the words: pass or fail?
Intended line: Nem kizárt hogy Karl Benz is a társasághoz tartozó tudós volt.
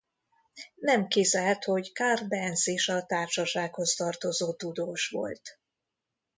pass